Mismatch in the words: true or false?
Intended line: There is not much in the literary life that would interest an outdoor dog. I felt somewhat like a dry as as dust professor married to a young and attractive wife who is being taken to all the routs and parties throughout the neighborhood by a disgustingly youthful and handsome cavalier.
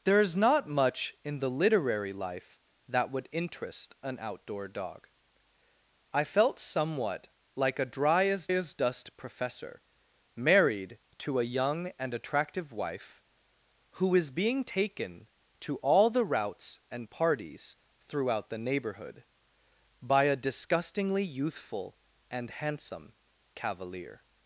false